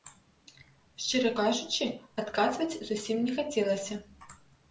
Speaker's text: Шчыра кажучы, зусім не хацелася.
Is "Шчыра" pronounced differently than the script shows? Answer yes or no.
no